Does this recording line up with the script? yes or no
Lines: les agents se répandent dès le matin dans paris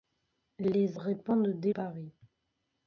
no